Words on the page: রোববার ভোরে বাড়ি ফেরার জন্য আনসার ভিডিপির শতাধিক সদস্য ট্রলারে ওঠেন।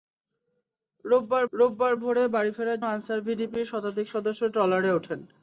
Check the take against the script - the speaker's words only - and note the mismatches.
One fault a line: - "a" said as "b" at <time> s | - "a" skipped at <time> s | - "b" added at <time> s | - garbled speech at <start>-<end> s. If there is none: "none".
- "রোববার" added at 1.5 s
- "জন্য" skipped at 2.8 s